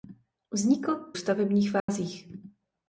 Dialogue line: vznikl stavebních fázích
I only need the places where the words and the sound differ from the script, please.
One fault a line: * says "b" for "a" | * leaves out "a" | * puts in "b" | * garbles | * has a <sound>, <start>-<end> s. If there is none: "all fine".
* has a dropout, 1.8-1.9 s